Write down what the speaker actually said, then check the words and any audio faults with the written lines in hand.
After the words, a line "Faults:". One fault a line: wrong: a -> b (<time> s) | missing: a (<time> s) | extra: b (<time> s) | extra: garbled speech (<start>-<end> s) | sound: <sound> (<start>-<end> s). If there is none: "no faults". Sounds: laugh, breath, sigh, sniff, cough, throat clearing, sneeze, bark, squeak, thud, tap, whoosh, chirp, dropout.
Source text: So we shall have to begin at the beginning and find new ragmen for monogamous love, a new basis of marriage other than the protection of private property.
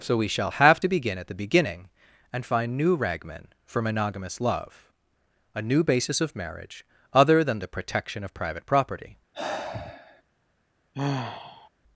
So we shall have to begin at the beginning and find new ragmen for monogamous love, a new basis of marriage other than the protection of private property.
Faults:
sound: sigh (9.3-10.2 s)
sound: sigh (10.9-11.7 s)